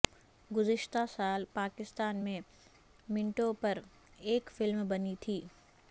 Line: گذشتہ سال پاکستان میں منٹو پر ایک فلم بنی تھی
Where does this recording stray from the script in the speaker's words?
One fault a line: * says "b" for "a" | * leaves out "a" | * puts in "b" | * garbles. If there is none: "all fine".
all fine